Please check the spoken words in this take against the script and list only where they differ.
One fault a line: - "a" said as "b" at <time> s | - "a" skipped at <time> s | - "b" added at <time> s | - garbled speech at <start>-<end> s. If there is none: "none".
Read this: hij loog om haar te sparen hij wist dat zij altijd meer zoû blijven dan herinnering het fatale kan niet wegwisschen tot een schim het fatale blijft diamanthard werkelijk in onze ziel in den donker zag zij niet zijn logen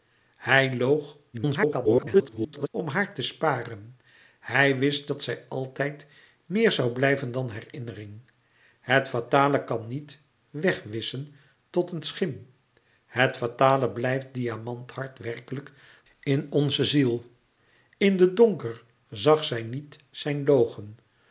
- garbled speech at 1.3-2.7 s